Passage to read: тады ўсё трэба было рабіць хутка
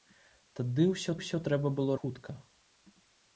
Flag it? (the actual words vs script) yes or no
yes